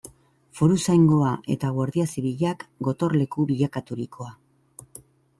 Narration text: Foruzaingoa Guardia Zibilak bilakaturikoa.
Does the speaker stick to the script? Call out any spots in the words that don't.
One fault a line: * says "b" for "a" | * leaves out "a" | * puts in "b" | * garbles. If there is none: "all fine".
* puts in "eta"
* puts in "gotorleku"